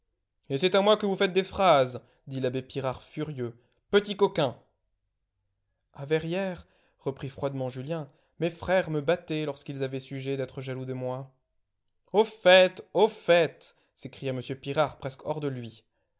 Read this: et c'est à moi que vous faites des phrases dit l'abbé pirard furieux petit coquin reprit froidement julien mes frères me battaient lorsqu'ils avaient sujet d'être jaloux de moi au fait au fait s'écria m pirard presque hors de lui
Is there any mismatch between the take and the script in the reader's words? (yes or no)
yes